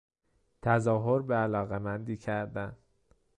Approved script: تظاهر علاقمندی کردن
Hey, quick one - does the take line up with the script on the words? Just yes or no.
no